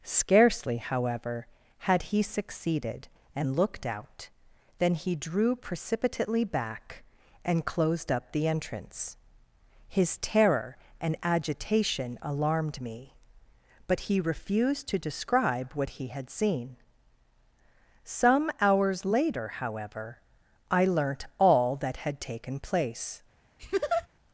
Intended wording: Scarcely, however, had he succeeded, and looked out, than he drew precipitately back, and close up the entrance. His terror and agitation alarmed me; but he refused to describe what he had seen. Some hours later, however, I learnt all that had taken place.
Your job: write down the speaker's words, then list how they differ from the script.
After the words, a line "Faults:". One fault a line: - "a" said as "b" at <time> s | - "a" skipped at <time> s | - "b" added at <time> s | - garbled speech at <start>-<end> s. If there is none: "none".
Scarcely, however, had he succeeded, and looked out, than he drew precipitately back, and closed up the entrance. His terror and agitation alarmed me; but he refused to describe what he had seen. Some hours later, however, I learnt all that had taken place.
Faults:
- "close" said as "closed" at 7.7 s